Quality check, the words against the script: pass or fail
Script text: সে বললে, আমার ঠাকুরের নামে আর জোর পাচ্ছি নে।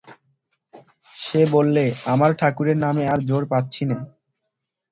pass